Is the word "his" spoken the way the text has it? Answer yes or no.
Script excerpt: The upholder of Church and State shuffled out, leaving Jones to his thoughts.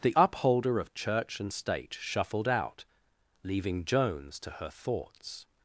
no